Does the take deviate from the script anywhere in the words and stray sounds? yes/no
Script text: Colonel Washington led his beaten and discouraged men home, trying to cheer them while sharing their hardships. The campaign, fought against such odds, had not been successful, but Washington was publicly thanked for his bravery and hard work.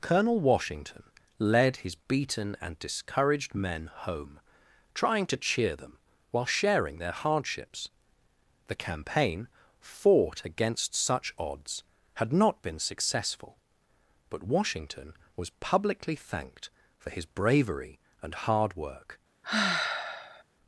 yes